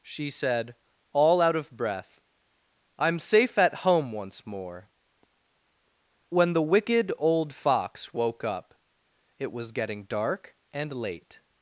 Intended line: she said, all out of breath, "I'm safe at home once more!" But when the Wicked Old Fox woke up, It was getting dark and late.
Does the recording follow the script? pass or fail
fail